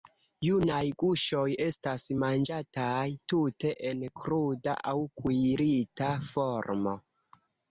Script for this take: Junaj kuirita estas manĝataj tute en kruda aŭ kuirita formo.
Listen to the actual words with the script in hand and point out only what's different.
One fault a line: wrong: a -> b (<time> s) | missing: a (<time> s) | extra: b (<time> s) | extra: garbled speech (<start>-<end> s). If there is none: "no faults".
wrong: kuirita -> guŝoj (1.0 s)